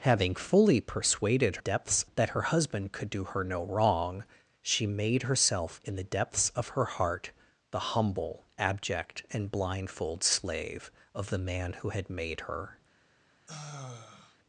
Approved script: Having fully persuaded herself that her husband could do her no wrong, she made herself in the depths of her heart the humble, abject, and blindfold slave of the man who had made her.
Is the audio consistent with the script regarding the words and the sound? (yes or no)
no